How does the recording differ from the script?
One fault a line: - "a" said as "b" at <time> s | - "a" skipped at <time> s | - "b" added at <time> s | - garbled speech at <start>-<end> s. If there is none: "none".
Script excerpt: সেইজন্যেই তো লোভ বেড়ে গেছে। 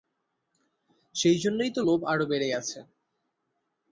- "আরো" added at 2.0 s